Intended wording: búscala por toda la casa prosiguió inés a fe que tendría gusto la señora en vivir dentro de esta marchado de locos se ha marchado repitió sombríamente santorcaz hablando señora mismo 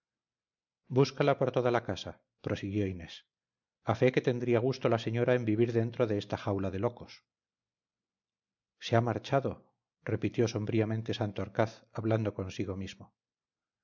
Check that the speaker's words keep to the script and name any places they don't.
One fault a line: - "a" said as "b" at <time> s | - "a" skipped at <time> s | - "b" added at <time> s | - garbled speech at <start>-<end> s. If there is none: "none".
- "marchado" said as "jaula" at 6.4 s
- "señora" said as "consigo" at 12.3 s